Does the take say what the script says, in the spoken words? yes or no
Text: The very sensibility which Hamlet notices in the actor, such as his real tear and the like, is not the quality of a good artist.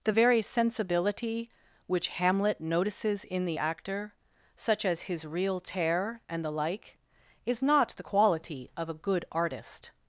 yes